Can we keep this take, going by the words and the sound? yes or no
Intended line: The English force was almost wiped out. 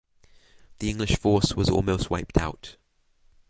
yes